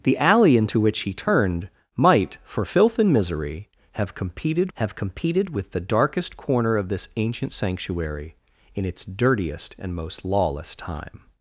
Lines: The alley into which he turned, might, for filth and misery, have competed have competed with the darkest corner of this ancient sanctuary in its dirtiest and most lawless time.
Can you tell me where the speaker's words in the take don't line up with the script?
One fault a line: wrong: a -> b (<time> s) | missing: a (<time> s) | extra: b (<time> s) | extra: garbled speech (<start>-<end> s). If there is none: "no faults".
no faults